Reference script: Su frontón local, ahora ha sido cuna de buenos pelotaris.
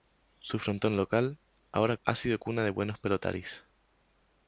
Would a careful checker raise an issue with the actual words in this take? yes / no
no